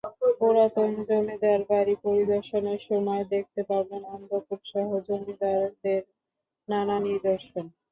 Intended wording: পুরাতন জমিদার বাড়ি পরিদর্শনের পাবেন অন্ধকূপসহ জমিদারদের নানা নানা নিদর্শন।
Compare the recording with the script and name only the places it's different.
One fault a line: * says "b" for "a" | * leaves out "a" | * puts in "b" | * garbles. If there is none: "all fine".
* puts in "সময় দেখতে"
* leaves out "নানা"